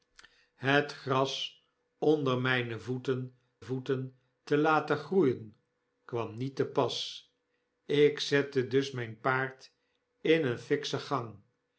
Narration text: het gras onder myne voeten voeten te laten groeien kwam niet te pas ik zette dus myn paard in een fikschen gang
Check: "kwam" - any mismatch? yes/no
no